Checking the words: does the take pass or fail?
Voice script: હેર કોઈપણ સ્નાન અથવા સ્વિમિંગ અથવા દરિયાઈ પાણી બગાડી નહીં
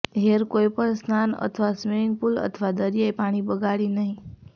fail